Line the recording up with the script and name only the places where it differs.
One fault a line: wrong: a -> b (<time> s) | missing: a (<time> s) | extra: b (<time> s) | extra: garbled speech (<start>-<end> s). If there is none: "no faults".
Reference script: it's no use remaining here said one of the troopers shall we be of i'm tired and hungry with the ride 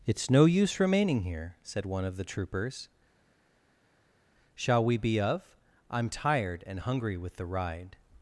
no faults